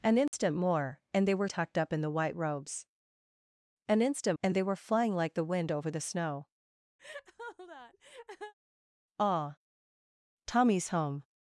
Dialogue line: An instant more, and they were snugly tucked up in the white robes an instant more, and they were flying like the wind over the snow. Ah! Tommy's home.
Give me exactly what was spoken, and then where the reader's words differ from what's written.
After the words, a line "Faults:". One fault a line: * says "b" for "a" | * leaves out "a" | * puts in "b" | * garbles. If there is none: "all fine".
An instant more, and they were tucked up in the white robes an instant and they were flying like the wind over the snow. Ah! Tommy's home.
Faults:
* leaves out "snugly"
* leaves out "more"